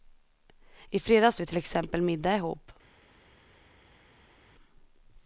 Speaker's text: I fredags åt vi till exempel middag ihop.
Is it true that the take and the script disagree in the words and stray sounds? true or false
true